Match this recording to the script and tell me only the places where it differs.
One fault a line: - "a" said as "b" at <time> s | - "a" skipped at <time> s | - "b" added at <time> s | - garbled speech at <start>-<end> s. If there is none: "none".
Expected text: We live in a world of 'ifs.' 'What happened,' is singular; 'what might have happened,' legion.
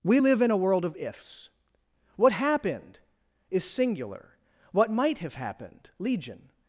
none